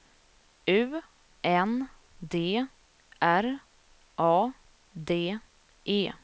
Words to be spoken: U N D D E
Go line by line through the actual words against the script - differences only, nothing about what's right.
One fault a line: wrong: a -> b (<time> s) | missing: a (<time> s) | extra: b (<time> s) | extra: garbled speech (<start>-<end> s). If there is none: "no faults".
extra: R A (3.2 s)